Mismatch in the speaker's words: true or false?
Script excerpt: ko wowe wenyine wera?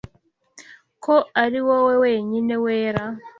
true